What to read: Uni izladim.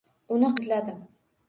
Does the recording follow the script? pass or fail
pass